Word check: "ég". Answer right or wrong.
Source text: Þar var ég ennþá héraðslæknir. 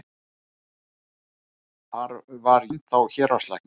wrong